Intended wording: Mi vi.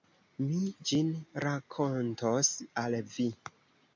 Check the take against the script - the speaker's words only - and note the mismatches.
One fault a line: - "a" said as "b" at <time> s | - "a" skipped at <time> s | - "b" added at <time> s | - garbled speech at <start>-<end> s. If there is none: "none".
- "ĝin rakontos al" added at 0.9 s